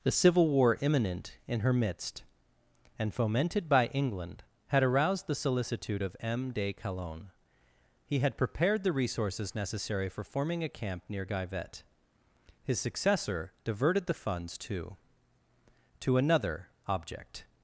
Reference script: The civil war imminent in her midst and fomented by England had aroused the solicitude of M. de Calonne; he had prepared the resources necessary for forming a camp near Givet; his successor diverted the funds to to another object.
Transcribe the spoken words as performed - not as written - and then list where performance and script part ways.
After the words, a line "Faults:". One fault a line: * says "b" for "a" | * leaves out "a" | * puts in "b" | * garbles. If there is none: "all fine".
The civil war imminent in her midst and fomented by England had aroused the solicitude of M. de Calonne; he had prepared the resources necessary for forming a camp near Givet; his successor diverted the funds to to another object.
Faults:
all fine